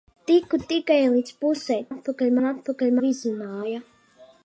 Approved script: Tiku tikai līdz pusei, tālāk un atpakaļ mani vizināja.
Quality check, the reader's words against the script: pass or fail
fail